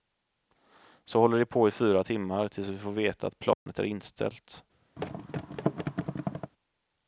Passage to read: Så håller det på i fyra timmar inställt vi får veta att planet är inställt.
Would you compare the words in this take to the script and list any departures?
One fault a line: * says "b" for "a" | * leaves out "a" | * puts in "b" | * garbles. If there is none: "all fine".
* says "tills" for "inställt"